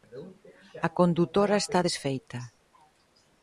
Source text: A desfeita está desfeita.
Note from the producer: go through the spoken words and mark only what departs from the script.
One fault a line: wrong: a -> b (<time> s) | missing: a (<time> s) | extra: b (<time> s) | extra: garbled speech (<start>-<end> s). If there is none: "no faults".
wrong: desfeita -> condutora (1.0 s)